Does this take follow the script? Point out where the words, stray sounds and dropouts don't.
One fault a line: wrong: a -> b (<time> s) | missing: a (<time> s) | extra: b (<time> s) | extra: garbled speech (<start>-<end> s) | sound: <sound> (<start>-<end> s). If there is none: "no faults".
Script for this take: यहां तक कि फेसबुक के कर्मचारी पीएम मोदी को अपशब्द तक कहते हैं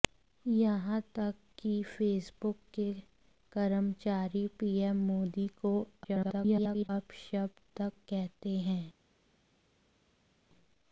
extra: garbled speech (6.0-6.9 s)